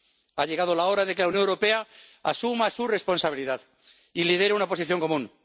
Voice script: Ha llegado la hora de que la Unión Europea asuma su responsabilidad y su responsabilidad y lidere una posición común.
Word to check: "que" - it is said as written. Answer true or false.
true